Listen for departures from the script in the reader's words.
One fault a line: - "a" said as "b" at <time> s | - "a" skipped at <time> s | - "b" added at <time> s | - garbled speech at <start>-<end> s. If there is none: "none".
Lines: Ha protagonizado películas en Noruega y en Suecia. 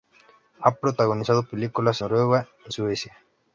- "en" skipped at 2.0 s
- "en" skipped at 2.7 s